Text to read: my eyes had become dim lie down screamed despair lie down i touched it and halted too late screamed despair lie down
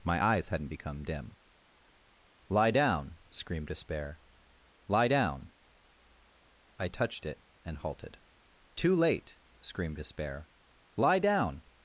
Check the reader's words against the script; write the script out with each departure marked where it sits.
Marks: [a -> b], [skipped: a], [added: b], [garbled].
my eyes [had -> hadn't] become dim lie down screamed despair lie down i touched it and halted too late screamed despair lie down